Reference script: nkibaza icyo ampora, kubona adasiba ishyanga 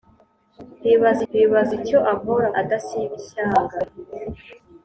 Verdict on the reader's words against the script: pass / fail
fail